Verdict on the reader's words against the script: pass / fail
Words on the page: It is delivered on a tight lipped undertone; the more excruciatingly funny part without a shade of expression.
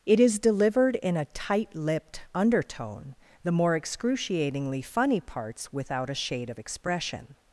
fail